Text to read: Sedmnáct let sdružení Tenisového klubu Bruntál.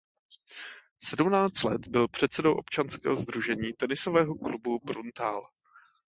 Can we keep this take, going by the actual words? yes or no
no